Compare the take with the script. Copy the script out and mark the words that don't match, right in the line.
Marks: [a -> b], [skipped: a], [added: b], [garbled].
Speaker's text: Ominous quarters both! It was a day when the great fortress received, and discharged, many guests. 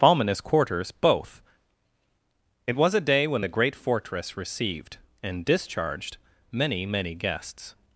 Ominous quarters both! It was a day when the great fortress received, and discharged, many [added: many] guests.